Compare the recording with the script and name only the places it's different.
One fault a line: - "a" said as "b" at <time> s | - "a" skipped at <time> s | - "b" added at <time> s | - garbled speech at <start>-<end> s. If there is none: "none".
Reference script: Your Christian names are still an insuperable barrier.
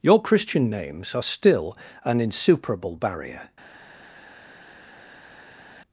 none